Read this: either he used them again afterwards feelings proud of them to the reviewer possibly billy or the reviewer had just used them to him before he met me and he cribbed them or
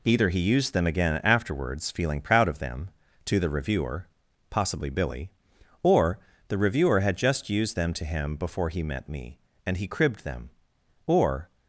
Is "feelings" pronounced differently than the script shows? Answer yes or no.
yes